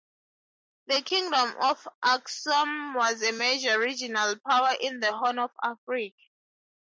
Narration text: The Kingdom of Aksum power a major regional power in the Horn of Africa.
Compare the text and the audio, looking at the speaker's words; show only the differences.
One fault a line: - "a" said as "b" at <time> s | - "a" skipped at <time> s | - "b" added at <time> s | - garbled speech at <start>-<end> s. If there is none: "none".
- "power" said as "was" at 3.0 s